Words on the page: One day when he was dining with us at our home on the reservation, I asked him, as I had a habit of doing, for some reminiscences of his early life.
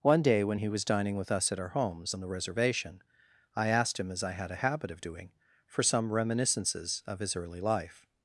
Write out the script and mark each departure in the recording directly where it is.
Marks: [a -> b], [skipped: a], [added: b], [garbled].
One day when he was dining with us at our [home -> homes] on the reservation, I asked him, as I had a habit of doing, for some reminiscences of his early life.